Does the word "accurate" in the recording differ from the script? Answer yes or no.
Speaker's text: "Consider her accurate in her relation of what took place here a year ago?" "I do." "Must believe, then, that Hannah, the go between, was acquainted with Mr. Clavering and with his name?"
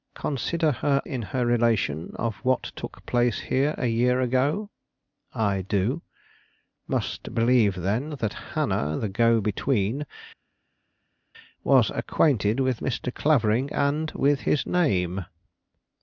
yes